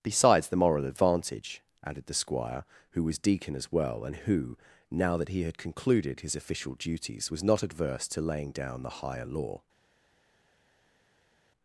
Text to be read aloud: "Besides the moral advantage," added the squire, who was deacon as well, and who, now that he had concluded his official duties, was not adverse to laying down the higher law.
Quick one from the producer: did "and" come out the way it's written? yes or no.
yes